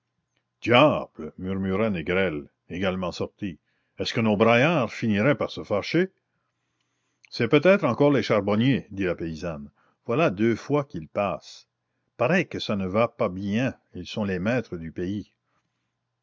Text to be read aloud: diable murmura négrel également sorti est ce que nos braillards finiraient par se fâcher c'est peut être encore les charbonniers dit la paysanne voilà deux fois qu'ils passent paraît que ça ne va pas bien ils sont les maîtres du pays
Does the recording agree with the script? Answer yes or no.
yes